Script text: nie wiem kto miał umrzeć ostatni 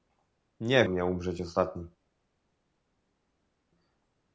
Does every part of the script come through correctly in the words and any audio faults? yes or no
no